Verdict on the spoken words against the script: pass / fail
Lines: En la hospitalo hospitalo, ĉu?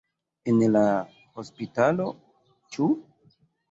fail